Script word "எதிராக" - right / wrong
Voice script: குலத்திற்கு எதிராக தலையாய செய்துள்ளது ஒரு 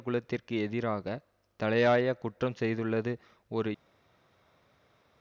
right